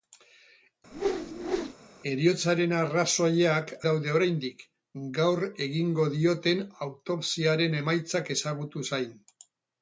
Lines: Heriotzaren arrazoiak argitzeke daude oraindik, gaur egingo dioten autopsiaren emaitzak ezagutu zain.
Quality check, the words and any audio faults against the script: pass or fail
fail